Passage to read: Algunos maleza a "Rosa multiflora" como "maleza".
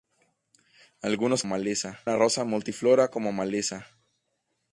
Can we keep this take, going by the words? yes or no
yes